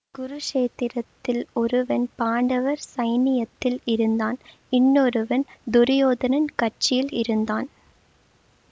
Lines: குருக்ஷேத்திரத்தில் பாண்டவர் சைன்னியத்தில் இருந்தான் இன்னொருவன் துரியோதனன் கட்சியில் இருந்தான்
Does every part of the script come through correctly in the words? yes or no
no